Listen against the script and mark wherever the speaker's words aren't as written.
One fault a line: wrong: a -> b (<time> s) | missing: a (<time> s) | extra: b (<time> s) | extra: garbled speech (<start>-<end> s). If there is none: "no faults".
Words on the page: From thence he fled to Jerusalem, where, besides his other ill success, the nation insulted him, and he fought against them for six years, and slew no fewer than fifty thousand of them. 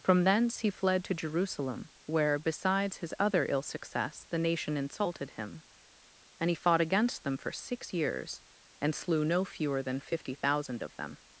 no faults